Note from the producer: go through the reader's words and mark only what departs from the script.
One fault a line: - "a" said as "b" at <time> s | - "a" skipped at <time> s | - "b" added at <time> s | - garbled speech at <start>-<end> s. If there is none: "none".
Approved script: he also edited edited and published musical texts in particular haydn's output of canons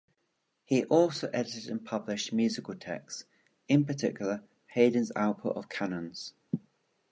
- "edited" skipped at 1.7 s